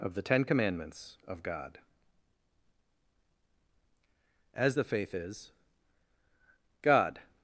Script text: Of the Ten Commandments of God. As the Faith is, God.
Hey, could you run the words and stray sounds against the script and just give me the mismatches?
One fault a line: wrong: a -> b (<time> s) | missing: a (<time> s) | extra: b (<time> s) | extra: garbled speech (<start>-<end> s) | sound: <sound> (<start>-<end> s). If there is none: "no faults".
no faults